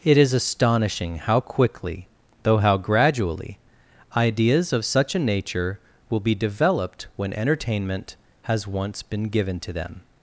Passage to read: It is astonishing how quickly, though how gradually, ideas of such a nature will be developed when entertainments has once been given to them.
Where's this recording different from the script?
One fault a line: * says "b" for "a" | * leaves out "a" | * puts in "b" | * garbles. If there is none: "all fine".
* says "entertainment" for "entertainments"